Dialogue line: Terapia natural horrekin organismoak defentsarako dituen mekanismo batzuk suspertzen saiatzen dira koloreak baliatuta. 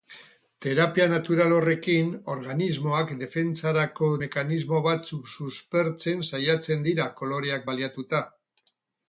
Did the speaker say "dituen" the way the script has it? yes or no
no